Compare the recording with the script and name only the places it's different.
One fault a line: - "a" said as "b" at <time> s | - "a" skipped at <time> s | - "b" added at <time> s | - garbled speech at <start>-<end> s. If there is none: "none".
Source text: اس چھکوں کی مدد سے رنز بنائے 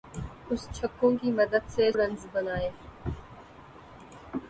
none